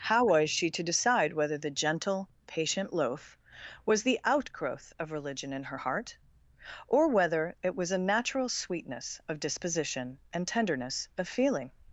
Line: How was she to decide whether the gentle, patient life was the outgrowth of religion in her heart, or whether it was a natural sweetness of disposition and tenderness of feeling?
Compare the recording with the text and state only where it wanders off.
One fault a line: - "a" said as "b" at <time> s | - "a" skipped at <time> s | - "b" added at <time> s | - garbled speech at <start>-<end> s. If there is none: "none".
- "life" said as "loaf" at 2.9 s